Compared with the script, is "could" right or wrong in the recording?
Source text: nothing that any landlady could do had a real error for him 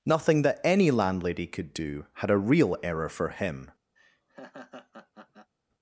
right